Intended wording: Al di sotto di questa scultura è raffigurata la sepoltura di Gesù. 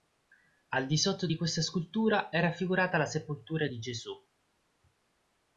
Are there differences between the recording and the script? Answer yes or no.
no